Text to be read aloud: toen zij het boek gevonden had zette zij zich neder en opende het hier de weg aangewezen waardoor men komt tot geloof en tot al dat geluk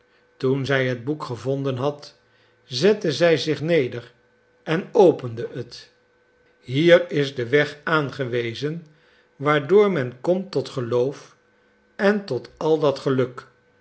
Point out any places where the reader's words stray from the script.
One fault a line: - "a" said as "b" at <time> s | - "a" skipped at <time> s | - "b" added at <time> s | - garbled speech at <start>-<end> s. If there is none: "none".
- "is" added at 7.1 s